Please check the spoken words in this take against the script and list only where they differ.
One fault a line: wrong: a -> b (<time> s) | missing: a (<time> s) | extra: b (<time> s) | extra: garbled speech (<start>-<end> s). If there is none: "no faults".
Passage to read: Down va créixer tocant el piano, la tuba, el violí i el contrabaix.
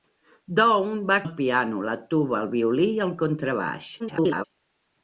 missing: créixer tocant (1.2 s)
extra: garbled speech (4.0-4.4 s)